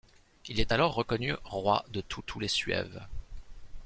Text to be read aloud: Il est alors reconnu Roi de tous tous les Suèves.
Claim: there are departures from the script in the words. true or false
false